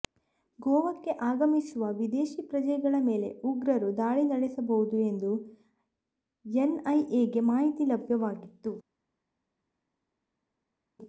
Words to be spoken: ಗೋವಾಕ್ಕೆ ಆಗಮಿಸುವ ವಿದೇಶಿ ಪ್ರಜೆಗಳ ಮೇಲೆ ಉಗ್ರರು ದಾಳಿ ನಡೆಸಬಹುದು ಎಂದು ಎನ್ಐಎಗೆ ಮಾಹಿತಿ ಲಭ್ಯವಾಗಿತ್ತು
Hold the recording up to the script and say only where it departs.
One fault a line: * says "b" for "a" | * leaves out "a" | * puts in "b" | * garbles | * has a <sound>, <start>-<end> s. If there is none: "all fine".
all fine